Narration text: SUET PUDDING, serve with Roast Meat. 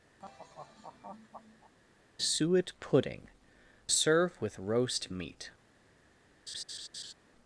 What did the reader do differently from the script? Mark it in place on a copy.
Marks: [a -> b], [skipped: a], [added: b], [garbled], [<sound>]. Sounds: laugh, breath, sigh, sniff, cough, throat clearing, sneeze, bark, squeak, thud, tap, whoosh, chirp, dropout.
[laugh] SUET PUDDING, serve with Roast Meat. [laugh]